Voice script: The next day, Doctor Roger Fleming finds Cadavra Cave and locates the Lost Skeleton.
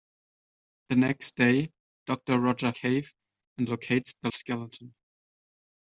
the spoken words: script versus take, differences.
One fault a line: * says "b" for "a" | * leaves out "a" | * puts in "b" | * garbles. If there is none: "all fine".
* leaves out "Fleming finds Cadavra"
* leaves out "Lost"